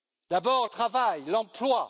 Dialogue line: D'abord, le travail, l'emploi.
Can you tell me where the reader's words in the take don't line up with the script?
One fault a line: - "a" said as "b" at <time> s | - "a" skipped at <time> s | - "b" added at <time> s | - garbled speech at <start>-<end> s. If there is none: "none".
- "le" skipped at 0.7 s